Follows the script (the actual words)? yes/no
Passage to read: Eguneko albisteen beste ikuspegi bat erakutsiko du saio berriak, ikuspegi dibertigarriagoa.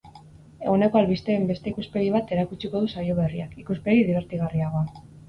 yes